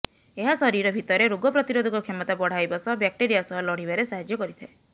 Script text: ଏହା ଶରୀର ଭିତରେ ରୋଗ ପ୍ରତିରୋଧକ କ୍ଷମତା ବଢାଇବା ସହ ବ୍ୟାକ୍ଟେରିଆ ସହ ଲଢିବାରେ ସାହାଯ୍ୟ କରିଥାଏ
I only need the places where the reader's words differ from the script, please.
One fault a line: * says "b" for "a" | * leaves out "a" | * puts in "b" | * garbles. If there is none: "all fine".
all fine